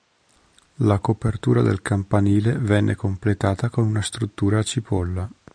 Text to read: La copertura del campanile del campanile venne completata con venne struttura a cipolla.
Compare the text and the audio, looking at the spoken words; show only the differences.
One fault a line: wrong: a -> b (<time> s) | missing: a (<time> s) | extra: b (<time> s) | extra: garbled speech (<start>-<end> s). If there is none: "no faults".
missing: del campanile (2.6 s)
wrong: venne -> una (3.9 s)